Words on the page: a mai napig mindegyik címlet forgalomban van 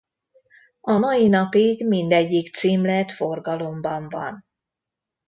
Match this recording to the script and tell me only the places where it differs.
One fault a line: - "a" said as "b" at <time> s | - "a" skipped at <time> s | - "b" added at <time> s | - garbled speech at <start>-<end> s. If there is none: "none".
none